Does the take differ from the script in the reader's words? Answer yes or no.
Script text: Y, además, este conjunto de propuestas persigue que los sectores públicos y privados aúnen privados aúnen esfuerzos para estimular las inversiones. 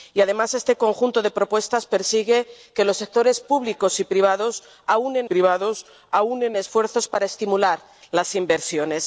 no